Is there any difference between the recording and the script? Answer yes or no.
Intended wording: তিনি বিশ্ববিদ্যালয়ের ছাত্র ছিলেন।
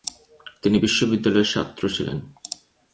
no